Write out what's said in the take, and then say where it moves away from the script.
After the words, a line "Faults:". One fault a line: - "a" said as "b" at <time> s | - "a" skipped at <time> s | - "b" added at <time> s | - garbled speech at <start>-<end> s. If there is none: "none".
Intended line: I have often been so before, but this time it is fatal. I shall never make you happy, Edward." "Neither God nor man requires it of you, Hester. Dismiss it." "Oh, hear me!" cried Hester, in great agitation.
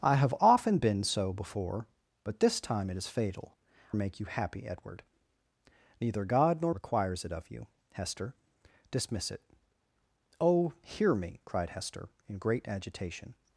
I have often been so before, but this time it is fatal. make you happy, Edward." "Neither God nor requires it of you, Hester. Dismiss it." "Oh, hear me!" cried Hester, in great agitation.
Faults:
- "I shall never" skipped at 3.5 s
- "man" skipped at 6.7 s